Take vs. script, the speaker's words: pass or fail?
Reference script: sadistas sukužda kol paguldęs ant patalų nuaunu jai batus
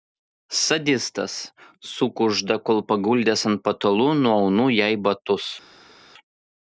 pass